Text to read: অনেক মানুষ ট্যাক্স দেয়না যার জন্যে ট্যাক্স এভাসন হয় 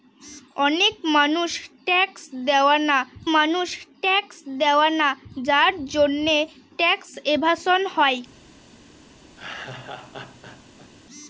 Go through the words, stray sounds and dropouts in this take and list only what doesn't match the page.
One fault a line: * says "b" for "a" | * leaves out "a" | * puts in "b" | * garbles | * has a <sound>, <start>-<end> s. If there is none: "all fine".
* puts in "মানুষ ট্যাক্স দেয়না"
* has a laugh, 9.4-10.9 s